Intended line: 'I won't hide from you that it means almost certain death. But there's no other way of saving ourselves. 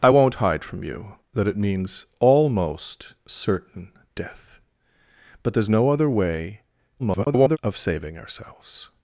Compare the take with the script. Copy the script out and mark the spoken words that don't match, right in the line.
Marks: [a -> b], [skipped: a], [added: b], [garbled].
'I won't hide from you that it means almost certain death. But there's no other way [garbled] of saving ourselves.